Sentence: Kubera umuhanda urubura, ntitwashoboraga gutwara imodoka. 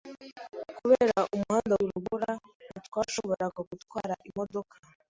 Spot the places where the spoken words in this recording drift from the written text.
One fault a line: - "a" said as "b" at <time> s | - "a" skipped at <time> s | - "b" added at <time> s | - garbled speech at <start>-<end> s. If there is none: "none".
none